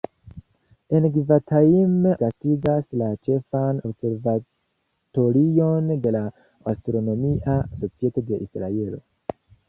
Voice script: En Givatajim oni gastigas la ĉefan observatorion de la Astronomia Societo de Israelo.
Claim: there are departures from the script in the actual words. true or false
true